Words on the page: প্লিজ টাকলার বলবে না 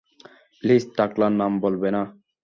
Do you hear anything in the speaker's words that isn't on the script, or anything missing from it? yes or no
yes